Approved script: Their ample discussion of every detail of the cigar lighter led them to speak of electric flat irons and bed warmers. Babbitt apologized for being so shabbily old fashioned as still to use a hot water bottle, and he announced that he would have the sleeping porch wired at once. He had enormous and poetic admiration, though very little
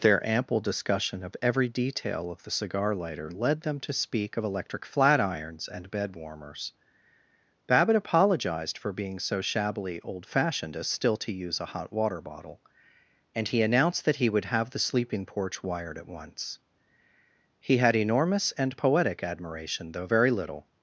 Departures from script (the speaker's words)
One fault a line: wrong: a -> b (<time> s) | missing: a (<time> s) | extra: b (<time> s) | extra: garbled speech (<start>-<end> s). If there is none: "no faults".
no faults